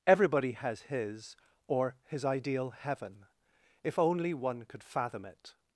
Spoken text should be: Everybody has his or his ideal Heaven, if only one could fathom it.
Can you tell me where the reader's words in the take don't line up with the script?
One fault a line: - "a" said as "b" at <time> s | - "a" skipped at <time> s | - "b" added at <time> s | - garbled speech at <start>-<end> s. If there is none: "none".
none